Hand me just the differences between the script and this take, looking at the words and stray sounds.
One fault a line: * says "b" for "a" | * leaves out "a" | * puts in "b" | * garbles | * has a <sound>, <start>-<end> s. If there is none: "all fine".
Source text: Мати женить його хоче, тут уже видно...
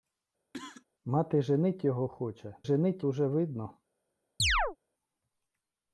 * has a cough, 0.5-0.8 s
* says "женить" for "тут"
* has a chirp, 4.4-4.8 s